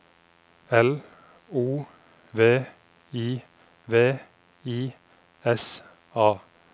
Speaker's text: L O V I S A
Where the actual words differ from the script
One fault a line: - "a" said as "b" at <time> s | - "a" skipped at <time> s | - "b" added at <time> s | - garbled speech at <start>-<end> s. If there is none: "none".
- "V I" added at 3.9 s